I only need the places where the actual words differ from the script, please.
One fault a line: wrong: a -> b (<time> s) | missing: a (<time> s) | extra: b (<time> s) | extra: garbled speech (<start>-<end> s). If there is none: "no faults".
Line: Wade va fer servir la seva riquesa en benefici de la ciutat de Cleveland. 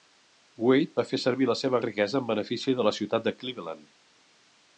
no faults